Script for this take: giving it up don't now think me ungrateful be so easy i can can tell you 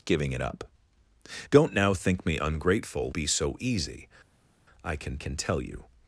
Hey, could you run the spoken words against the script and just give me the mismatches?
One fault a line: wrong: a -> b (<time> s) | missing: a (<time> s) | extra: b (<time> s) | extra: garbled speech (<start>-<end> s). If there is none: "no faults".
no faults